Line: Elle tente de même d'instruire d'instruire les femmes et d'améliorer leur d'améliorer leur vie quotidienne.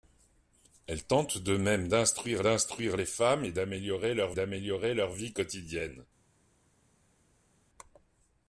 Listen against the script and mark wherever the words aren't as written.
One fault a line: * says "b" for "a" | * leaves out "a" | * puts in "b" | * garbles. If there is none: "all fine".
all fine